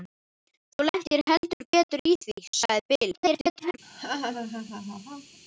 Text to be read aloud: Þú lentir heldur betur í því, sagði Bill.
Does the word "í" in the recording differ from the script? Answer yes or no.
no